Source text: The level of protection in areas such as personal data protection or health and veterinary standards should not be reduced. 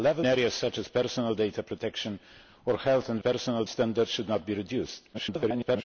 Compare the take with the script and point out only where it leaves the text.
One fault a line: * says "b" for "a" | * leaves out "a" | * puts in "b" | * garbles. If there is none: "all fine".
* leaves out "of protection in"
* says "personal" for "veterinary"
* garbles